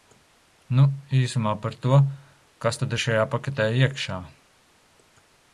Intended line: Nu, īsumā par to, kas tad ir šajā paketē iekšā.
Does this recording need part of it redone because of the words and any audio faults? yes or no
no